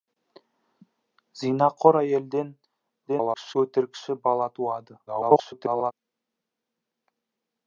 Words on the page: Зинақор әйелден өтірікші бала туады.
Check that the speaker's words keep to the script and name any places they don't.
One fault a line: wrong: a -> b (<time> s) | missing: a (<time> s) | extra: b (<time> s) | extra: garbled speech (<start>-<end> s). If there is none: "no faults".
extra: garbled speech (3.1-3.6 s)
extra: garbled speech (5.1-5.9 s)